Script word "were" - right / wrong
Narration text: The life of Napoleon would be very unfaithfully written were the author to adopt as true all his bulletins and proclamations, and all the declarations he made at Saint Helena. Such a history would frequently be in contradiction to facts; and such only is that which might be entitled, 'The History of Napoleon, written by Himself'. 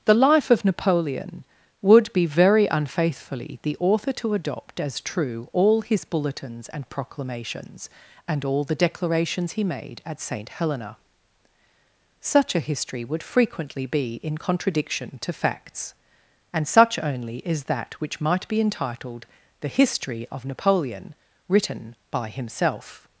wrong